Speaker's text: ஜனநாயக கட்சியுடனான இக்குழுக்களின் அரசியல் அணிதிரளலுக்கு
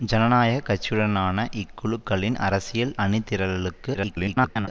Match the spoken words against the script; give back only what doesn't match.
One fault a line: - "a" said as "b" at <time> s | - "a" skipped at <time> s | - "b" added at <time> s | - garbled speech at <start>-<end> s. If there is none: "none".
- garbled speech at 3.9-4.7 s